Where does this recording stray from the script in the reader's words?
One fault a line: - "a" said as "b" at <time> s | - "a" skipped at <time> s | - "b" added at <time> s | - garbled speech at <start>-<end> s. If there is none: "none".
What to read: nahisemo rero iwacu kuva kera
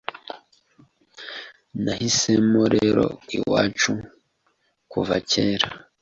none